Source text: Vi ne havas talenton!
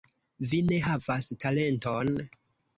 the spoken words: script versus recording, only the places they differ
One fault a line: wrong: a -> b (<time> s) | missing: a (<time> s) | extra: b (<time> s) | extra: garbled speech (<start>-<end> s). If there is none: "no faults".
no faults